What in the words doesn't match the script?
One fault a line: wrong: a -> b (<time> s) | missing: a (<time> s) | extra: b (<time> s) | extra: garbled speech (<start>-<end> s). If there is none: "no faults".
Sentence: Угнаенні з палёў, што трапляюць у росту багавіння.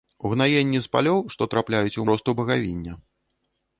no faults